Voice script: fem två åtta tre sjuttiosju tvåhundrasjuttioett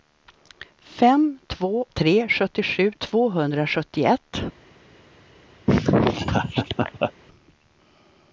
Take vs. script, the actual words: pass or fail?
fail